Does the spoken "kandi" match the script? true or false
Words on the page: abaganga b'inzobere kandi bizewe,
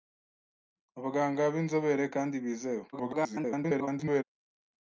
true